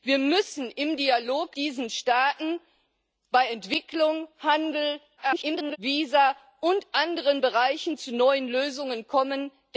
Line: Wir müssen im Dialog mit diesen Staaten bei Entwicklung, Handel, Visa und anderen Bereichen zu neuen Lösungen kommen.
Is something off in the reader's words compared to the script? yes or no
yes